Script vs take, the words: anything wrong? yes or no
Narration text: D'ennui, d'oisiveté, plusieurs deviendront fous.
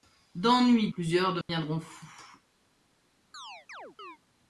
yes